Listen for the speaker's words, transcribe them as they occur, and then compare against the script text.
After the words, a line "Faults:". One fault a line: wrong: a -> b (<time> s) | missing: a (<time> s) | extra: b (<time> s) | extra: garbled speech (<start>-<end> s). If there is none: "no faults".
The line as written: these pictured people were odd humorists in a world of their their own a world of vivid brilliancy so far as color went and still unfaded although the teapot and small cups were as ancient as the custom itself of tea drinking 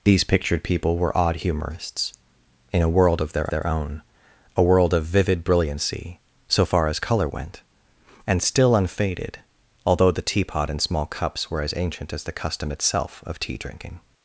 these pictured people were odd humorists in a world of their their own a world of vivid brilliancy so far as color went and still unfaded although the teapot and small cups were as ancient as the custom itself of tea drinking
Faults:
no faults